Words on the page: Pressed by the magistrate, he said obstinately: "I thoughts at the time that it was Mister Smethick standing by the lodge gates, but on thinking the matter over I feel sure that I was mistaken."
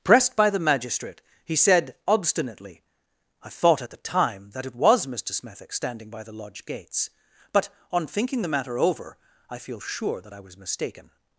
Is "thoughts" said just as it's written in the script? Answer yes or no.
no